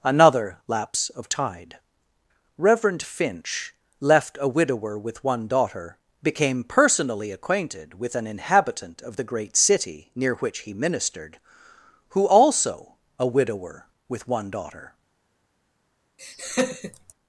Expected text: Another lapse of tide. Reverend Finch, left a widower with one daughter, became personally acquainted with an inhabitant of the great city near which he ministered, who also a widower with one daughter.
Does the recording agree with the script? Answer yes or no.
yes